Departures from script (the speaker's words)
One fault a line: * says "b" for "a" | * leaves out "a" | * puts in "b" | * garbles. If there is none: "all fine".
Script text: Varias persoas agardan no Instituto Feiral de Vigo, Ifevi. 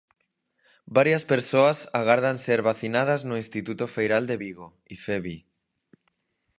* puts in "ser vacinadas"